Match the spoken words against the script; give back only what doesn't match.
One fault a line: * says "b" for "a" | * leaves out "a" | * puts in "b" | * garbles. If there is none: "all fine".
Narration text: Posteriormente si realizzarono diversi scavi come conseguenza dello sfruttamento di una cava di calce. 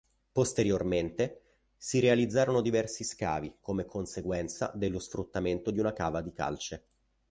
all fine